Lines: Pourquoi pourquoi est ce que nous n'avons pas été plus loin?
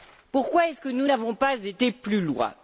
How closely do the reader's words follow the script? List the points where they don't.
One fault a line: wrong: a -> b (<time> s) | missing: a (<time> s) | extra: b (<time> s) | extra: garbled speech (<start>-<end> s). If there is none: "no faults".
missing: pourquoi (0.7 s)